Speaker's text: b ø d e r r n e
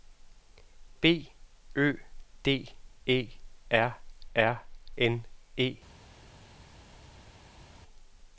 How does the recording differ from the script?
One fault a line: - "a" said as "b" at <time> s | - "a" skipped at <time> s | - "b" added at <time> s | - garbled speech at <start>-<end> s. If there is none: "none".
none